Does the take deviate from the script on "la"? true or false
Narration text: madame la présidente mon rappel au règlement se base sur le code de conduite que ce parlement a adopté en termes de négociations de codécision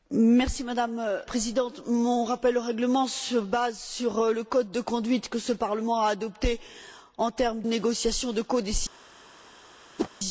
true